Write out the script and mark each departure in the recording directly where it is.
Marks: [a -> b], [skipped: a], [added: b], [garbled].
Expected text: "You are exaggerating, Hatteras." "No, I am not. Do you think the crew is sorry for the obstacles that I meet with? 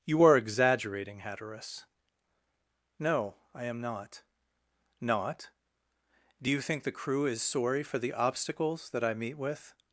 "You are exaggerating, Hatteras." "No, I am not. [added: not] Do you think the crew is sorry for the obstacles that I meet with?